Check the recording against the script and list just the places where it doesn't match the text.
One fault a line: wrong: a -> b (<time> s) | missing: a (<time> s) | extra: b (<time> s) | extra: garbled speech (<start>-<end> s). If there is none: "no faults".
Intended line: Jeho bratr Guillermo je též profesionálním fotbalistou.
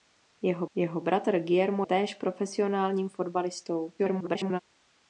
extra: jeho (0.7 s)
missing: je (1.8 s)
extra: garbled speech (4.0-4.6 s)